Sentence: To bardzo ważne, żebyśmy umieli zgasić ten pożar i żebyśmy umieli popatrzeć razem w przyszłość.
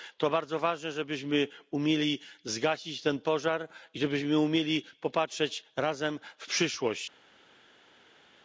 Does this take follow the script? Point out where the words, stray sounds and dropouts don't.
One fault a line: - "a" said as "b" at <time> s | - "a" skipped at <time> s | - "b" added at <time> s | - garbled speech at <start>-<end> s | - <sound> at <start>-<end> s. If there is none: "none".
none